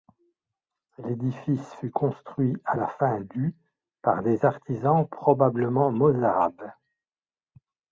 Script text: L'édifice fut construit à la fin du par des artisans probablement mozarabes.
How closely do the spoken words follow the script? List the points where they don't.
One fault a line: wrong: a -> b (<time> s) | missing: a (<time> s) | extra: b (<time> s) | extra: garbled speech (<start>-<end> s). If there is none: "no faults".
no faults